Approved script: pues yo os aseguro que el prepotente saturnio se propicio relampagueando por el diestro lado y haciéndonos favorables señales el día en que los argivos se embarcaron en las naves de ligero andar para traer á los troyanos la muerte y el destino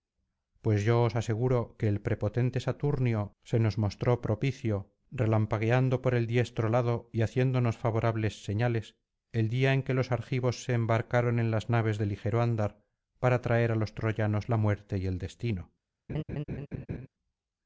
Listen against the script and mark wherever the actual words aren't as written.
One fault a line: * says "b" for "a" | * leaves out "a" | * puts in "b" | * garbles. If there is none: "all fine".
* puts in "nos mostró"